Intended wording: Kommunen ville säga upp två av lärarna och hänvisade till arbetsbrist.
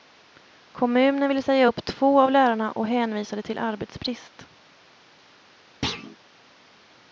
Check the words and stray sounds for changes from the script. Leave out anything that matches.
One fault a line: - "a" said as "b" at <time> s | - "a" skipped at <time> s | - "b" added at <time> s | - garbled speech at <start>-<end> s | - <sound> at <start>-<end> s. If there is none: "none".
- thud at 5.8-6.2 s